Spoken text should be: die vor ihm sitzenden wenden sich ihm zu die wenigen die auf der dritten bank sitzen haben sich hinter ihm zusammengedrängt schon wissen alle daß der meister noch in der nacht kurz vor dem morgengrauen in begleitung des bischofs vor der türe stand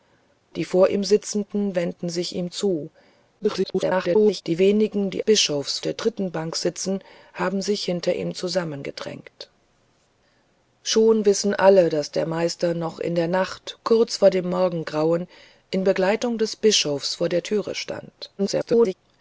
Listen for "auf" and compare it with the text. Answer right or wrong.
wrong